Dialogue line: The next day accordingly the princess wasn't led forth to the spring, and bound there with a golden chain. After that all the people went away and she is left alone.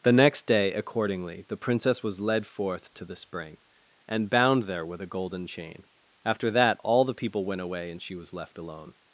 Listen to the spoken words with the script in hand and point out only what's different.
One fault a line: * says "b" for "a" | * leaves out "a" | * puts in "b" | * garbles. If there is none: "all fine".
* says "was" for "wasn't"
* says "was" for "is"